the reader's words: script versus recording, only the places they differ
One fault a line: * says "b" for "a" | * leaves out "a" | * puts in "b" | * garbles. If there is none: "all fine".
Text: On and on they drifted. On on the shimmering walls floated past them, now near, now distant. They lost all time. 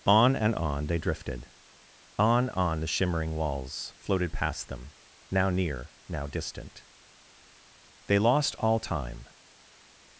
all fine